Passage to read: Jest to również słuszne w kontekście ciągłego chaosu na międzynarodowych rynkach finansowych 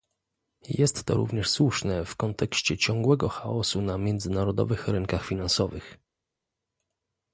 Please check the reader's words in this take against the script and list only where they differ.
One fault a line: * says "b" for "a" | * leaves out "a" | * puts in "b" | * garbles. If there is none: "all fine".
all fine